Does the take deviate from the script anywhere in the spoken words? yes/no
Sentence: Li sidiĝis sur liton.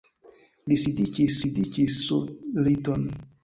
yes